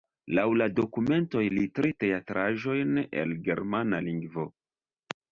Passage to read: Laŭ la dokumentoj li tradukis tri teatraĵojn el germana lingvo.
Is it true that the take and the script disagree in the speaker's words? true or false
true